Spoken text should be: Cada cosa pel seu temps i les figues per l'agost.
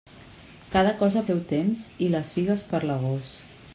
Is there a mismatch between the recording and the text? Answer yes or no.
yes